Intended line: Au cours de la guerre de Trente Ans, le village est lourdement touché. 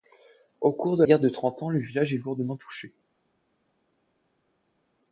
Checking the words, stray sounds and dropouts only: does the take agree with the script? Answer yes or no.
no